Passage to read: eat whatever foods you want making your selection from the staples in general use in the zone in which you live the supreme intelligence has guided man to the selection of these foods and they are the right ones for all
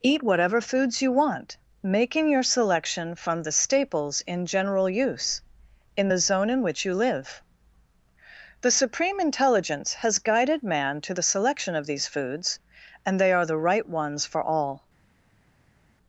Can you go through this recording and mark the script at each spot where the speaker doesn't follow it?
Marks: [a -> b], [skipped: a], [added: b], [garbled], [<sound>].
eat whatever foods you want making your selection from the staples in general use in the zone in which you live the supreme intelligence has guided man to the selection of these foods and they are the right ones for all